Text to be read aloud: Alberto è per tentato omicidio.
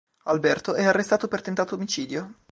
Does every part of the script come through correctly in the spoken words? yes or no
no